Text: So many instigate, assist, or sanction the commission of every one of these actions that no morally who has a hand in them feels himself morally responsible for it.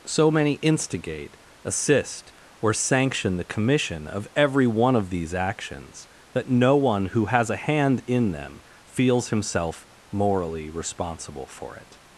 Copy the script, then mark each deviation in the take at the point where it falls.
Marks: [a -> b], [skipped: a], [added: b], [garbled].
So many instigate, assist, or sanction the commission of every one of these actions that no [morally -> one] who has a hand in them feels himself morally responsible for it.